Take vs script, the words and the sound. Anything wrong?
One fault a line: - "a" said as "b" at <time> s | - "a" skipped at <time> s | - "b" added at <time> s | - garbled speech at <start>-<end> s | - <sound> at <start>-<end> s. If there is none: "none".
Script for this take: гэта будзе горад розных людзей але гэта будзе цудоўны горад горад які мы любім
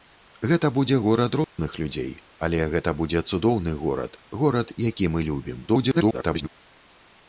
- dropout at 1.4-1.6 s
- garbled speech at 5.7-6.5 s